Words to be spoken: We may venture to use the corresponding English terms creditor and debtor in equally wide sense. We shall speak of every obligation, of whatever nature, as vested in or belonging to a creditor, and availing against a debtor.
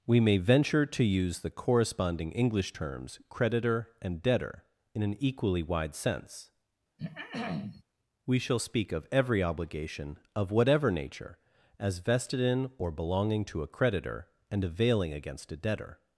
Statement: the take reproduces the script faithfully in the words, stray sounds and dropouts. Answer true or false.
false